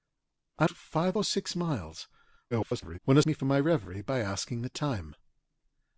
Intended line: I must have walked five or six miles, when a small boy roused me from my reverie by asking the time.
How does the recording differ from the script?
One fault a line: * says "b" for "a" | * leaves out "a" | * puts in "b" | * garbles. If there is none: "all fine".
* leaves out "must have walked"
* garbles
* leaves out "small boy roused"